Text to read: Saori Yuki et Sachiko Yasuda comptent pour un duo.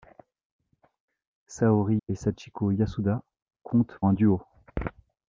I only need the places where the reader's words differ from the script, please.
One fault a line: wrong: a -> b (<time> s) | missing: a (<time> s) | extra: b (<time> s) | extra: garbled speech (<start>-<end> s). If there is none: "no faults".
missing: Yuki (1.9 s)
missing: pour (4.0 s)